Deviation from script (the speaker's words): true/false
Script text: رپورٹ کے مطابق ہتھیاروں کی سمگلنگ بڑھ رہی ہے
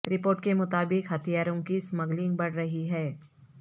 false